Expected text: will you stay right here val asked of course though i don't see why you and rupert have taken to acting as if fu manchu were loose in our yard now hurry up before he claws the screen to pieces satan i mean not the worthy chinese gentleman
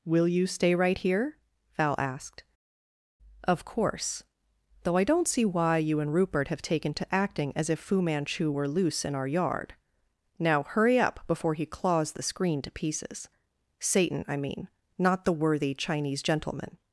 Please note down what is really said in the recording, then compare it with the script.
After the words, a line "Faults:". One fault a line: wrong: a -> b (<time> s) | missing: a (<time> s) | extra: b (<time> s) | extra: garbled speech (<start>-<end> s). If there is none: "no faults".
will you stay right here val asked of course though i don't see why you and rupert have taken to acting as if fu manchu were loose in our yard now hurry up before he claws the screen to pieces satan i mean not the worthy chinese gentleman
Faults:
no faults